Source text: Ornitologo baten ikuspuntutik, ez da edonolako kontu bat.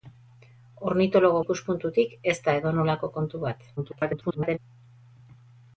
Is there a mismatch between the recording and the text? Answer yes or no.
yes